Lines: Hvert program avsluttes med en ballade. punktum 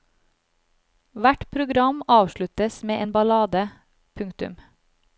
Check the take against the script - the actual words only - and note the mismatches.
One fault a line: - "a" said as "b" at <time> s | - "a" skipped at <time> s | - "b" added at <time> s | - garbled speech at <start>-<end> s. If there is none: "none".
none